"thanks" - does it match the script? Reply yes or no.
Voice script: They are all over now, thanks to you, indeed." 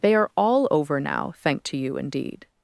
no